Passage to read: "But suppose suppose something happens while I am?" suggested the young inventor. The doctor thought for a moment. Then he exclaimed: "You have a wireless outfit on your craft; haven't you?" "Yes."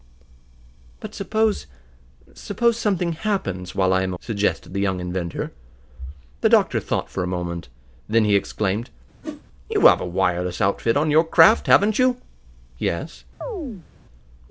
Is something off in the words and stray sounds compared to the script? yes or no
yes